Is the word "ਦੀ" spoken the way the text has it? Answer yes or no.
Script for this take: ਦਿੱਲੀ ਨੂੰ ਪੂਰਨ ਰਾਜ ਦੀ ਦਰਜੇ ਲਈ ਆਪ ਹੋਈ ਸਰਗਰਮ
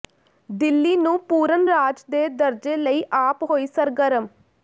no